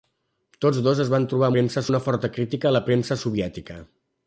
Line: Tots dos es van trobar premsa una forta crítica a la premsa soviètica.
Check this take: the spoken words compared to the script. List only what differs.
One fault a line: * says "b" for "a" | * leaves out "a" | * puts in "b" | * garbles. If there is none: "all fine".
all fine